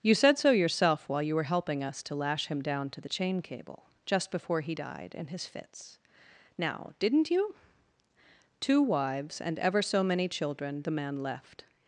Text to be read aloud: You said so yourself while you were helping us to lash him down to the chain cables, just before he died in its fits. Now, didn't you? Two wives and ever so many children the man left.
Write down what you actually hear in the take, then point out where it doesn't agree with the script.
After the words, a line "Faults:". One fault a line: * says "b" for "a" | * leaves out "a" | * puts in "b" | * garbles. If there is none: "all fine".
You said so yourself while you were helping us to lash him down to the chain cable, just before he died in his fits. Now, didn't you? Two wives and ever so many children the man left.
Faults:
* says "cable" for "cables"
* says "his" for "its"